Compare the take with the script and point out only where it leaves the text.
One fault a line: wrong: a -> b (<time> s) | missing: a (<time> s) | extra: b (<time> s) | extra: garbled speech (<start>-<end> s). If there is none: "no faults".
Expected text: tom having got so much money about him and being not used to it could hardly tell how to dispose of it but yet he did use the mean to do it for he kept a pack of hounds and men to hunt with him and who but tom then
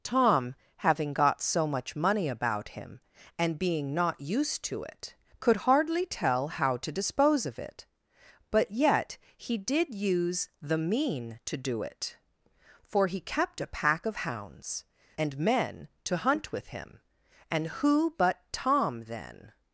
no faults